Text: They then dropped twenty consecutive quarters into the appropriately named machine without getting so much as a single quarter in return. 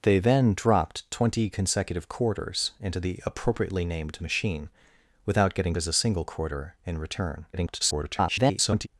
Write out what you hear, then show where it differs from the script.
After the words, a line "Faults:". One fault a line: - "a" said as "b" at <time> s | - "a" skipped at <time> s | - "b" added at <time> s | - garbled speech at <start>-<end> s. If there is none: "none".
They then dropped twenty consecutive quarters into the appropriately named machine without getting as a single quarter in return. [garbled]
Faults:
- "so much" skipped at 5.8 s
- garbled speech at 7.5-8.9 s